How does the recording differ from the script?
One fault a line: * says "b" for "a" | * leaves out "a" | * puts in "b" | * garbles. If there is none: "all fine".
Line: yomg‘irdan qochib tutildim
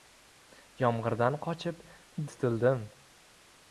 all fine